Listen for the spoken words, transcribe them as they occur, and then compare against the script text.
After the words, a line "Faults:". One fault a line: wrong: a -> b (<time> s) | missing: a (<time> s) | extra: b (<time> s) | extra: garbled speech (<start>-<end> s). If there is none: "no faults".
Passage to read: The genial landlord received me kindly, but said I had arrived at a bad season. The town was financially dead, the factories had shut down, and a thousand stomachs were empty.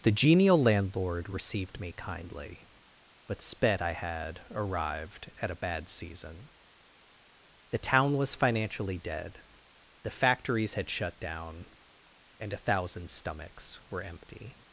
The genial landlord received me kindly, but sped I had arrived at a bad season. The town was financially dead, the factories had shut down, and a thousand stomachs were empty.
Faults:
wrong: said -> sped (3.4 s)